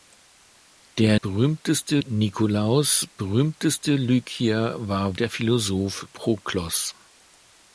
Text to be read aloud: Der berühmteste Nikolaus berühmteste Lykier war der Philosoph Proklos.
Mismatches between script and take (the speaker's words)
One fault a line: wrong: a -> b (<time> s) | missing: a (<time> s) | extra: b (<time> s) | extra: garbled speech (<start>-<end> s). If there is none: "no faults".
no faults